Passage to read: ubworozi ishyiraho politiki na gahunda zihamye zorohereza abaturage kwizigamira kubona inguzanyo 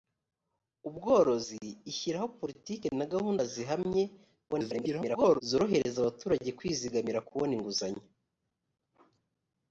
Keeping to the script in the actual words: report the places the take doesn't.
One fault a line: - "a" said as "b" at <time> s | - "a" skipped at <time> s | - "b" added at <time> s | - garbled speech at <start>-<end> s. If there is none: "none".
- garbled speech at 4.5-5.4 s